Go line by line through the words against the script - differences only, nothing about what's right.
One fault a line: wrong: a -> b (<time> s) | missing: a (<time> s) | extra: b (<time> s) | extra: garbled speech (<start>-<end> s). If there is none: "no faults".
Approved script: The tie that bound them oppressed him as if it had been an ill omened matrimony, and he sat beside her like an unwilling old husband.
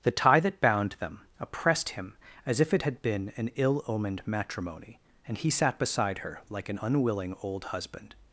no faults